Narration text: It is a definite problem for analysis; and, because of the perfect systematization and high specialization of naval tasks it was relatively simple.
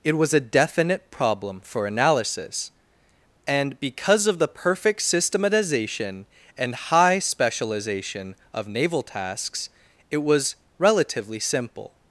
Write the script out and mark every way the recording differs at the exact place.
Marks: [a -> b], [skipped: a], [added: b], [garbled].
It [is -> was] a definite problem for analysis; and, because of the perfect systematization and high specialization of naval tasks it was relatively simple.